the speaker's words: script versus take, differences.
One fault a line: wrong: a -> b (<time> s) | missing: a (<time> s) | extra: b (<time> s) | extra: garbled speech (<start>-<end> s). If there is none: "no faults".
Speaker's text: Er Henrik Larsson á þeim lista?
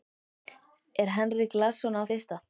missing: þeim (2.0 s)